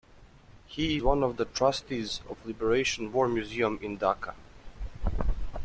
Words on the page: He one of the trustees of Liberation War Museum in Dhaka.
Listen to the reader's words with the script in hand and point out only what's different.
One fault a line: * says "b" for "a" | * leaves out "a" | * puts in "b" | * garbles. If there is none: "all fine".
all fine